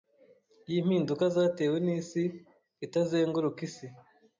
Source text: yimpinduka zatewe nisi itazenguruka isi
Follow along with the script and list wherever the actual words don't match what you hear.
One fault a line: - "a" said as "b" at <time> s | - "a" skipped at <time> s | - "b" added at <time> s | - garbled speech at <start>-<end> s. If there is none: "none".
none